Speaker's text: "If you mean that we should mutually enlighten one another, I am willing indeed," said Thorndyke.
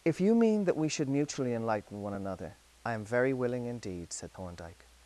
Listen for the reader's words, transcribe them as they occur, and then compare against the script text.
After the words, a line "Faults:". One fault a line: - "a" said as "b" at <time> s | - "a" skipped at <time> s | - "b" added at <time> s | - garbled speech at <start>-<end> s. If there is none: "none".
"If you mean that we should mutually enlighten one another, I am very willing indeed," said Thorndyke.
Faults:
- "very" added at 3.0 s